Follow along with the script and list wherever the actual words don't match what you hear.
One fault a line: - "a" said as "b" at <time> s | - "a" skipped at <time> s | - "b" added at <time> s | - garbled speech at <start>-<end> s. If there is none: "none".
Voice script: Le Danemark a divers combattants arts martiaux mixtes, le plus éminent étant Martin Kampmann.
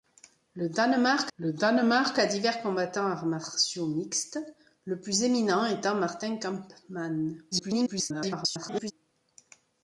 - "le Danemark" added at 1.4 s
- garbled speech at 7.5-8.9 s